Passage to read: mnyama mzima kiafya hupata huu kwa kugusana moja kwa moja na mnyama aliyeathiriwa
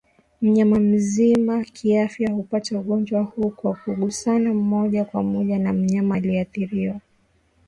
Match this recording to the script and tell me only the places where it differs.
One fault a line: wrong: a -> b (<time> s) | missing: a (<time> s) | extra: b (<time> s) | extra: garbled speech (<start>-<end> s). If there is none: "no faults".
extra: ugonjwa (2.8 s)